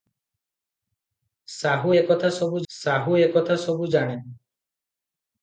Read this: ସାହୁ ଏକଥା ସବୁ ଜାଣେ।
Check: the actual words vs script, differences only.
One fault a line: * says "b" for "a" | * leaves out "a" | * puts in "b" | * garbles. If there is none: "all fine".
* puts in "ସାହୁ ଏକଥା ସବୁ"